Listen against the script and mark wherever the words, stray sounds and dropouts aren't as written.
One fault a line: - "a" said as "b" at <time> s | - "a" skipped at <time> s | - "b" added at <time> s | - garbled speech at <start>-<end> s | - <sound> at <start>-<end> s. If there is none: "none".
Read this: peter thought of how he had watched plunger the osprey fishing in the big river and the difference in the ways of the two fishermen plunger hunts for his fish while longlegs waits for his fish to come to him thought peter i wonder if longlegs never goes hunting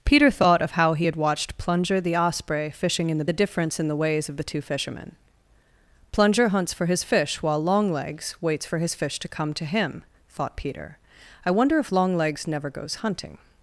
- "big river and" skipped at 3.3 s